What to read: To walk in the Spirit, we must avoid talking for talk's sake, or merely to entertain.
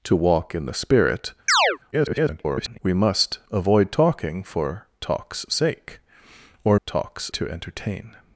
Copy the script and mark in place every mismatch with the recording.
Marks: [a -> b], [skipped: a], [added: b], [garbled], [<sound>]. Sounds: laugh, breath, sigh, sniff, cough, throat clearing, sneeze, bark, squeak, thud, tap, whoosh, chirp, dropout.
To walk in the Spirit, [chirp] [garbled] we must avoid talking for talk's sake, or [merely -> talk's] to entertain.